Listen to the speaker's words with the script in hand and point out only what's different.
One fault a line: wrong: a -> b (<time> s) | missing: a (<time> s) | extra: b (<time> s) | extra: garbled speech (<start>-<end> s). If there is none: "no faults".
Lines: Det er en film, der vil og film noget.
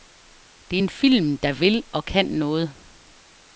wrong: film -> kan (2.1 s)